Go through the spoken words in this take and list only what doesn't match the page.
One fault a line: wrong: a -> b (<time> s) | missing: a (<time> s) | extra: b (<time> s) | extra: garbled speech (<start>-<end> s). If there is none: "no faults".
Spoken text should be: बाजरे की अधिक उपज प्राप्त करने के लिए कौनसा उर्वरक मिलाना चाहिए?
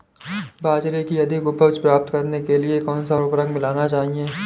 no faults